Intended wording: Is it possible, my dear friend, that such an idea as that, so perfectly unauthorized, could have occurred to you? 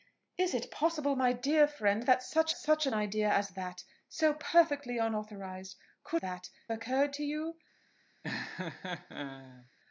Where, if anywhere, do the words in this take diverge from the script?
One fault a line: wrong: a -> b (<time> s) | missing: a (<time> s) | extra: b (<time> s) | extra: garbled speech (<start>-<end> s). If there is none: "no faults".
extra: such (2.5 s)
wrong: have -> that (6.1 s)